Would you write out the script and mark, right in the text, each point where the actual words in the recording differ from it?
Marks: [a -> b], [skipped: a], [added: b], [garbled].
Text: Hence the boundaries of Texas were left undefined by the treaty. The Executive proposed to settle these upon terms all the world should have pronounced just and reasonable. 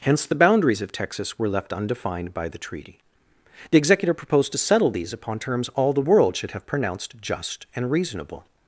Hence the boundaries of Texas were left undefined by the treaty. The Executive proposed to settle these upon terms all the world should have pronounced just and reasonable.